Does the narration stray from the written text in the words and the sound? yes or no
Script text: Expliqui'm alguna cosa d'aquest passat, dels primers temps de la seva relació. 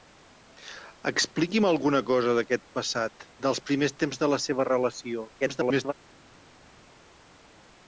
yes